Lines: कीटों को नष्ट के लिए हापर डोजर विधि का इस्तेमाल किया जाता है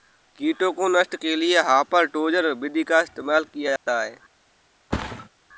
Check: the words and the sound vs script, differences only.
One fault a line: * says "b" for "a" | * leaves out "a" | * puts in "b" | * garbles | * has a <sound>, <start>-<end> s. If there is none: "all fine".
* has a dropout, 3.8-3.9 s
* has a thud, 4.9-5.3 s